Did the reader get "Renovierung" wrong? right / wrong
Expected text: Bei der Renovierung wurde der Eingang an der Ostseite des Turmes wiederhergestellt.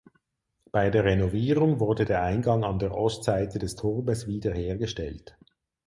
right